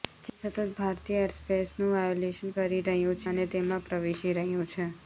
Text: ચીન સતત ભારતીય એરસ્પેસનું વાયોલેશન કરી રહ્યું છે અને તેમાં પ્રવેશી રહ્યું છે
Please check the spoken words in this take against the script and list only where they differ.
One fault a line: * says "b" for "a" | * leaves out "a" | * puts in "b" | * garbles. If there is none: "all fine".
* leaves out "છે"